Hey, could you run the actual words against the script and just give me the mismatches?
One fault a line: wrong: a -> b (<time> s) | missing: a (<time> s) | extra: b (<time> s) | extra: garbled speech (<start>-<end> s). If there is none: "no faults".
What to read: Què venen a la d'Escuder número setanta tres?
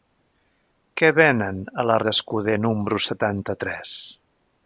no faults